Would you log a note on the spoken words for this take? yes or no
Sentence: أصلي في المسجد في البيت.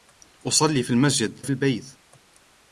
no